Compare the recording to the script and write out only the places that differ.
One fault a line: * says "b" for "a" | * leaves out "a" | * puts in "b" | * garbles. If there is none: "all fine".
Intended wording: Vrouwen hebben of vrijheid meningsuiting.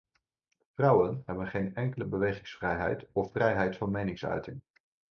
* puts in "geen enkele bewegingsvrijheid"
* puts in "van"